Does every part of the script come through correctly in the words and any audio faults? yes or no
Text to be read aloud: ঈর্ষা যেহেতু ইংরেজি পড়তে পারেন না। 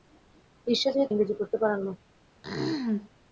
no